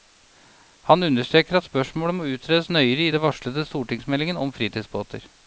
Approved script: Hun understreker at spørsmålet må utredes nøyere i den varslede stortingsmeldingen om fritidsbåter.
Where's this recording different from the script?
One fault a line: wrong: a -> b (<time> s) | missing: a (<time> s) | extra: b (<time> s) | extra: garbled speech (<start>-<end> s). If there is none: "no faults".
wrong: Hun -> Han (0.9 s)